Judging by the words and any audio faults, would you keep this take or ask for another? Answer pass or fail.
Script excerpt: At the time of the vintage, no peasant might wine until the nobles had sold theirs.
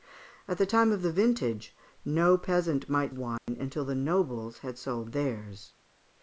fail